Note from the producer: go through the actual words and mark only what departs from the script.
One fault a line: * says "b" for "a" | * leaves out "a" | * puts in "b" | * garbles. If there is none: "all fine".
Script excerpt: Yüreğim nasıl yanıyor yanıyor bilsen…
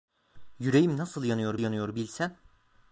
all fine